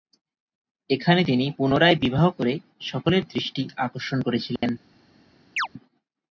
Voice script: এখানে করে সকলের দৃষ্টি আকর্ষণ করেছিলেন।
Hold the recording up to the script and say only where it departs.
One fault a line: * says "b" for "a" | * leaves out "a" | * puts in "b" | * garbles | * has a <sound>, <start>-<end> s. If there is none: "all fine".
* puts in "তিনি পুনরায় বিবাহ"
* has a dropout, 4.6-4.6 s
* has a chirp, 5.6-5.7 s